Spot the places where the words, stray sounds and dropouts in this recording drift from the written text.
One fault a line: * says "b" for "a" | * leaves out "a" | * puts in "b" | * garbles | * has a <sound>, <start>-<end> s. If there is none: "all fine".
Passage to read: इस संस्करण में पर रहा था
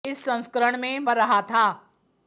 all fine